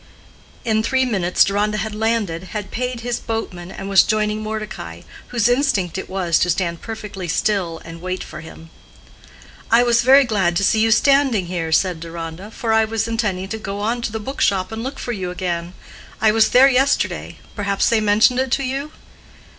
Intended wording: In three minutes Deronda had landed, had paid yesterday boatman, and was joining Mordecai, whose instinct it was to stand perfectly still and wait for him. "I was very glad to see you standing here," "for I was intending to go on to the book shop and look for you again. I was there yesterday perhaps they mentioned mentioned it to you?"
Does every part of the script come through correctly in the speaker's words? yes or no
no